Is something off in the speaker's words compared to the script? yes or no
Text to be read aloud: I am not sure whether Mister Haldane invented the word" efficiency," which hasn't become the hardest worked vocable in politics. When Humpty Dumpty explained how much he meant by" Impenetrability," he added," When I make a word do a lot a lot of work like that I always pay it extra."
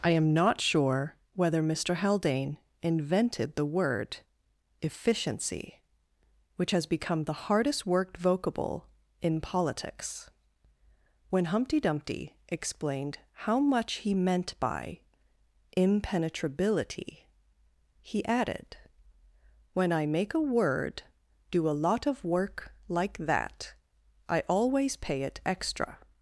yes